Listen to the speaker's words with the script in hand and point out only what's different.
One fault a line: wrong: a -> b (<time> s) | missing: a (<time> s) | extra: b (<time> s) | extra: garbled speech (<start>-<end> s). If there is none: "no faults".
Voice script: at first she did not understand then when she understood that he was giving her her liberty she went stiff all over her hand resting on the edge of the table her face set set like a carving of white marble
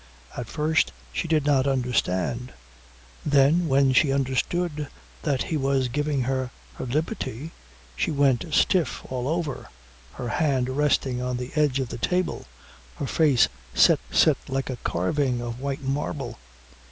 no faults